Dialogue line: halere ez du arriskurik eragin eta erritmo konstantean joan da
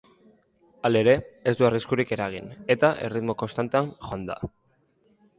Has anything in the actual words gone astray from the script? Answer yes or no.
no